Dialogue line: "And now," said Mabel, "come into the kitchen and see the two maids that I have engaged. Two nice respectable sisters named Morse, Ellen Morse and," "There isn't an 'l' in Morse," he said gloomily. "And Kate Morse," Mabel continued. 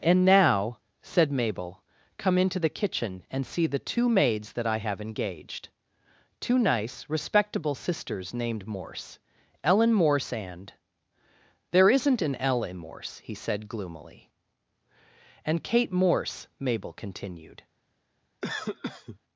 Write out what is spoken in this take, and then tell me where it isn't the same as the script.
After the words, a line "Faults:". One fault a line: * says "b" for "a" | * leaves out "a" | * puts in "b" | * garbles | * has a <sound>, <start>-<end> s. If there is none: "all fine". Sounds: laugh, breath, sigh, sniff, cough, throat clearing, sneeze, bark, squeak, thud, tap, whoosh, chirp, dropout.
"And now," said Mabel, "come into the kitchen and see the two maids that I have engaged. Two nice respectable sisters named Morse, Ellen Morse and," "There isn't an 'l' in Morse," he said gloomily. "And Kate Morse," Mabel continued.
Faults:
* has a cough, 18.4-19.2 s